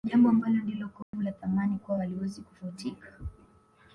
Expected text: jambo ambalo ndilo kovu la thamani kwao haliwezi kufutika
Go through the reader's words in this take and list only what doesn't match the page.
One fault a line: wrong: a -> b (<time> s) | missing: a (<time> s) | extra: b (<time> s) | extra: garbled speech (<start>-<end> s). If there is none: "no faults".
no faults